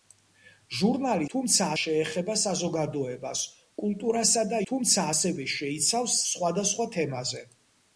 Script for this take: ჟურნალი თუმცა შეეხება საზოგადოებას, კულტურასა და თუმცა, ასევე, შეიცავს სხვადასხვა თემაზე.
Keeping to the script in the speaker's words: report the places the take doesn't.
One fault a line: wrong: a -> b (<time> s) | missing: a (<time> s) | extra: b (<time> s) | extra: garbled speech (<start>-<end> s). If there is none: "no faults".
no faults